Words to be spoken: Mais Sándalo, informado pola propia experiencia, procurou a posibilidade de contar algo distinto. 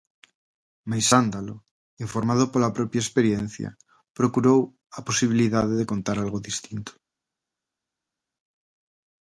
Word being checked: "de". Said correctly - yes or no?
yes